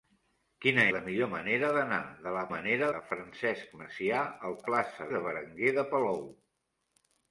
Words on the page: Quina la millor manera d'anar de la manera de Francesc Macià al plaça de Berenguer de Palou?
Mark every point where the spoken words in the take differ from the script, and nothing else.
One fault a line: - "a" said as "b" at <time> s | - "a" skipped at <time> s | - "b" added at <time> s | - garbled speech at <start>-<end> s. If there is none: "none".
none